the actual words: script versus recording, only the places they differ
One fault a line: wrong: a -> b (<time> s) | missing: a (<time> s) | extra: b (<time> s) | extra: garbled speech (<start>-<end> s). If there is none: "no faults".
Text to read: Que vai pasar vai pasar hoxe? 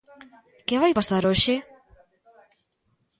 missing: vai pasar (1.2 s)